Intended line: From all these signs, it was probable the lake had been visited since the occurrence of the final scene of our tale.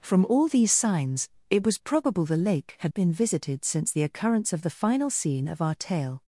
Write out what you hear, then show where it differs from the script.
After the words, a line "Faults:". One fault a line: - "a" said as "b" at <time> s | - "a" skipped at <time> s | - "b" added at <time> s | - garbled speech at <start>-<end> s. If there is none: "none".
From all these signs, it was probable the lake had been visited since the occurrence of the final scene of our tale.
Faults:
none